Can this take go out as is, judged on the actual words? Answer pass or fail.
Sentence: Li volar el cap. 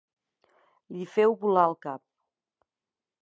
fail